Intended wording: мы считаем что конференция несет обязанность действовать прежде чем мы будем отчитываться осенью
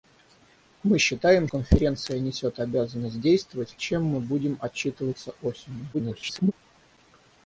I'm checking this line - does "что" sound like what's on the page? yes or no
no